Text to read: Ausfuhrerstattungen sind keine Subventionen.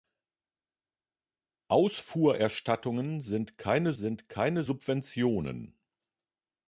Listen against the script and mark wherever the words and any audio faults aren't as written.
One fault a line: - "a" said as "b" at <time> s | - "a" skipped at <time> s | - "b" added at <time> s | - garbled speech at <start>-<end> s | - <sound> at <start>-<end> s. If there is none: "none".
- "sind keine" added at 3.9 s